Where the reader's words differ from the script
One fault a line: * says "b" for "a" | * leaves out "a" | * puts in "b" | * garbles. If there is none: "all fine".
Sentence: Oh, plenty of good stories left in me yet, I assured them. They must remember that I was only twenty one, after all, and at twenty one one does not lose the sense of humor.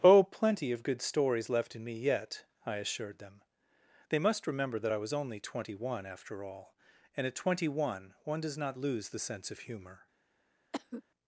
all fine